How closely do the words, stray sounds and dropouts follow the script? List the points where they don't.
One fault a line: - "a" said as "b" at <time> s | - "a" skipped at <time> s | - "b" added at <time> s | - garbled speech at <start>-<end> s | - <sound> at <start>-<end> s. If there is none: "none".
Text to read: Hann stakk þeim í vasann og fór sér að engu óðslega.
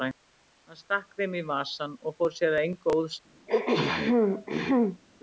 - throat clearing at 3.5-5.0 s